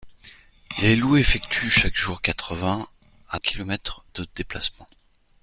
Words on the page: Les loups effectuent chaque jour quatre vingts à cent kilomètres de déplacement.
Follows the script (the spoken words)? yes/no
no